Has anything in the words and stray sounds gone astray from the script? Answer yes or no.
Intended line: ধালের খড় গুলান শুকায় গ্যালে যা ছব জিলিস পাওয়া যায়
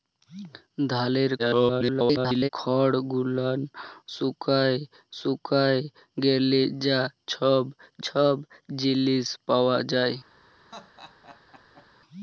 yes